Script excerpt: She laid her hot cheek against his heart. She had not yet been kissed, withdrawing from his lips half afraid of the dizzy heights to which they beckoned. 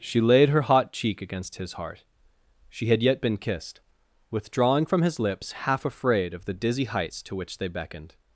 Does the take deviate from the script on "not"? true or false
true